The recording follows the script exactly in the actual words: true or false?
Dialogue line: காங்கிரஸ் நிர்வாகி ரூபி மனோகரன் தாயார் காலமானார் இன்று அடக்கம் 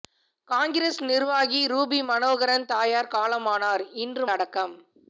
true